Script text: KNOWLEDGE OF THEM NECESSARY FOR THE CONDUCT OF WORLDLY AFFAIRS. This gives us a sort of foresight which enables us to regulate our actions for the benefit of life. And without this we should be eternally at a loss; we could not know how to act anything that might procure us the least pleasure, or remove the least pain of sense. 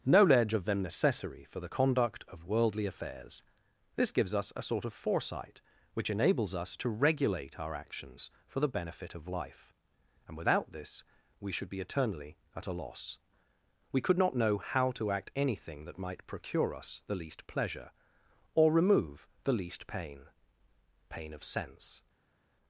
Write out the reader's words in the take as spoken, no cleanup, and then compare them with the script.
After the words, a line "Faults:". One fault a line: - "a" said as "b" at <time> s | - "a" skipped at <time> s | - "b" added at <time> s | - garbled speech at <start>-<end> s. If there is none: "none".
KNOWLEDGE OF THEM NECESSARY FOR THE CONDUCT OF WORLDLY AFFAIRS. This gives us a sort of foresight which enables us to regulate our actions for the benefit of life. And without this we should be eternally at a loss; we could not know how to act anything that might procure us the least pleasure, or remove the least pain pain of sense.
Faults:
- "pain" added at 21.1 s